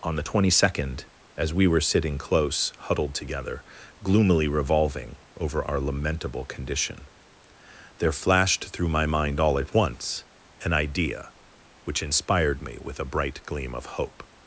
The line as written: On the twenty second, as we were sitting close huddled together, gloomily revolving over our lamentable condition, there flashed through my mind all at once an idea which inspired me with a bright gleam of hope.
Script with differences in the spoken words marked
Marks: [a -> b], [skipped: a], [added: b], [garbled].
On the twenty second, as we were sitting close huddled together, gloomily revolving over our lamentable condition, there flashed through my mind all at once an idea which inspired me with a bright gleam of hope.